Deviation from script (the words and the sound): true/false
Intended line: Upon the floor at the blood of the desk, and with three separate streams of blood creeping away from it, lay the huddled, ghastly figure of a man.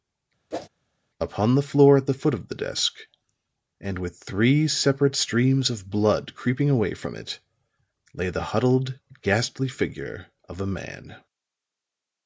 true